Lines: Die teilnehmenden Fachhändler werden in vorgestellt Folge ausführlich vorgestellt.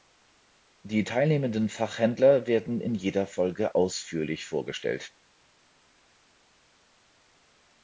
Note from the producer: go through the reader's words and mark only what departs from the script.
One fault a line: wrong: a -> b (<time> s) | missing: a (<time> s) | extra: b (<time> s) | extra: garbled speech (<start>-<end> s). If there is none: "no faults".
wrong: vorgestellt -> jeder (3.0 s)